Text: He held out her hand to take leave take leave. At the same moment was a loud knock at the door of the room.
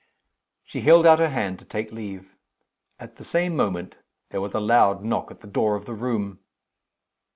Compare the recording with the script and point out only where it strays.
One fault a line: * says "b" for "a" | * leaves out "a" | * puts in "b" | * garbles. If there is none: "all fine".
* says "She" for "He"
* leaves out "take leave"
* puts in "there"